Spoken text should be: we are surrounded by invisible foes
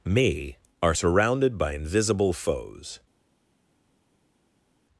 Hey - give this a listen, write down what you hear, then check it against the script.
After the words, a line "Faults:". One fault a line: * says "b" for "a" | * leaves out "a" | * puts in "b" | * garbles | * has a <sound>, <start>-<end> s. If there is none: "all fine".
me are surrounded by invisible foes
Faults:
* says "me" for "we"